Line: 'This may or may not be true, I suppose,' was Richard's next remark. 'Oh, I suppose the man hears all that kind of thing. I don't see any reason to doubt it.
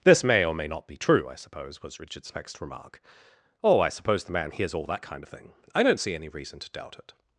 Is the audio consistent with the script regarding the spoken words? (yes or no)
yes